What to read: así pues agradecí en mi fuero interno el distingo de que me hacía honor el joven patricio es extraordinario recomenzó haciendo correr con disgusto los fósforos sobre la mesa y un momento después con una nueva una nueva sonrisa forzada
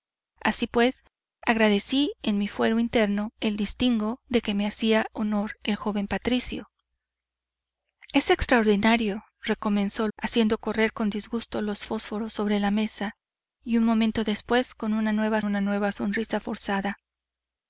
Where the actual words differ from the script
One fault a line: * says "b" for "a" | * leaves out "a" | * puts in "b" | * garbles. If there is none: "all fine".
all fine